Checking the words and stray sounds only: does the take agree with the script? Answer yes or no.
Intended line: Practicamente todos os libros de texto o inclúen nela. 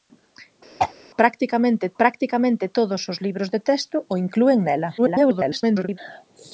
no